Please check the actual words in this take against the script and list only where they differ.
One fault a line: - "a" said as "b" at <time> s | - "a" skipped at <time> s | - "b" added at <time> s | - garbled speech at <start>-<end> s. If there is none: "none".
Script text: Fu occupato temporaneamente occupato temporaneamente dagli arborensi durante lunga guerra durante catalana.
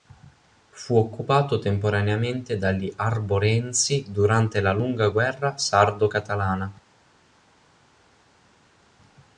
- "occupato temporaneamente" skipped at 2.6 s
- "la" added at 4.6 s
- "durante" said as "sardo" at 5.6 s